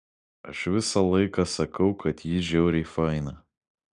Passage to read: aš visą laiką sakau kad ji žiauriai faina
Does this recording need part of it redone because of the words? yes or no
no